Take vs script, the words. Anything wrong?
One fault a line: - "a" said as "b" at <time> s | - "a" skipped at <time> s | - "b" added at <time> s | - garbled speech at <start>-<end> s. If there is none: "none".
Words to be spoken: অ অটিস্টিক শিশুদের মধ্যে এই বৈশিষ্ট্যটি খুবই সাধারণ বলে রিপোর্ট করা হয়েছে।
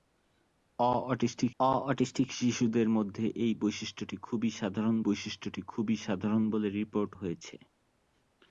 - "অ অটিস্টিক" added at 1.6 s
- "বৈশিষ্ট্যটি খুবই সাধারণ" added at 5.1 s
- "করা" skipped at 7.1 s